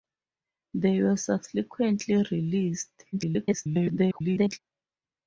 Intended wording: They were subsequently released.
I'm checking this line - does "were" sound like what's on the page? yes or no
yes